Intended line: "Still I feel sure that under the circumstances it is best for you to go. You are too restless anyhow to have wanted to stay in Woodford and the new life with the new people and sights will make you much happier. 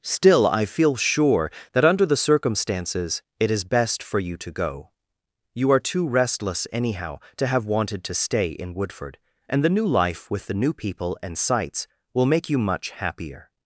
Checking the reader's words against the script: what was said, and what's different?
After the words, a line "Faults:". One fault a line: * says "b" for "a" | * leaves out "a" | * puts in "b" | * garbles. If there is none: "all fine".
"Still I feel sure that under the circumstances it is best for you to go. You are too restless anyhow to have wanted to stay in Woodford and the new life with the new people and sights will make you much happier.
Faults:
all fine